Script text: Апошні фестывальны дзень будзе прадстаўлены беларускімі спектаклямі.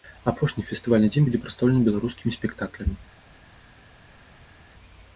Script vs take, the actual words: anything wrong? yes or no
no